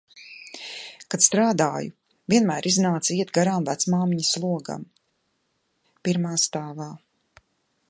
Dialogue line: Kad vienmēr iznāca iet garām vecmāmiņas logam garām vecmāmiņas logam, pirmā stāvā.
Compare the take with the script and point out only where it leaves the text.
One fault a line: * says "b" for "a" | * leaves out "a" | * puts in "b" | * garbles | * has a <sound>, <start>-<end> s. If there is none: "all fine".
* puts in "strādāju"
* leaves out "garām vecmāmiņas logam"